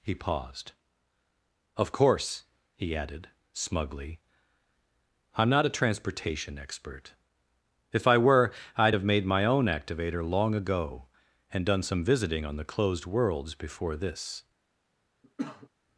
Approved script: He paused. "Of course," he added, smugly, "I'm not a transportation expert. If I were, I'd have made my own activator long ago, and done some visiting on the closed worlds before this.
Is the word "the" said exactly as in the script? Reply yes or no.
yes